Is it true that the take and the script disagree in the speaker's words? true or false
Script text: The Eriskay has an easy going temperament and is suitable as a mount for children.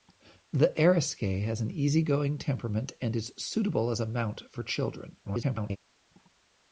true